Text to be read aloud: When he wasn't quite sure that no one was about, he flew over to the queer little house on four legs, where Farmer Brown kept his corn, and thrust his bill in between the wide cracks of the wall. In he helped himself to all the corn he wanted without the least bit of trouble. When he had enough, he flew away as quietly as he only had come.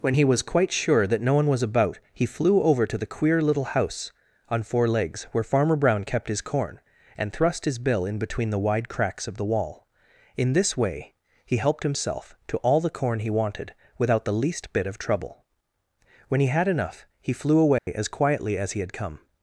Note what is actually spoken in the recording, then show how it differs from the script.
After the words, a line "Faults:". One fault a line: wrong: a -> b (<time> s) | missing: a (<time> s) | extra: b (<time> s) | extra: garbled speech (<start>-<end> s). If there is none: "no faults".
When he was quite sure that no one was about, he flew over to the queer little house on four legs, where Farmer Brown kept his corn, and thrust his bill in between the wide cracks of the wall. In this way he helped himself to all the corn he wanted without the least bit of trouble. When he had enough, he flew away as quietly as he had come.
Faults:
wrong: wasn't -> was (0.2 s)
extra: this way (10.5 s)
missing: only (18.8 s)